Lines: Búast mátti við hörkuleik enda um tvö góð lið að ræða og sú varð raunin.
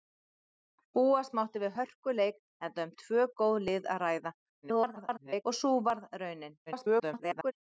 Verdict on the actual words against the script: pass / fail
fail